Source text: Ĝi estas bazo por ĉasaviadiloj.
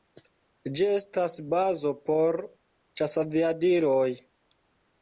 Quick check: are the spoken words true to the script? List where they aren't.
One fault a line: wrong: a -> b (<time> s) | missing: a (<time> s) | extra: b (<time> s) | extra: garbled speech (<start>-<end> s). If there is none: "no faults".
no faults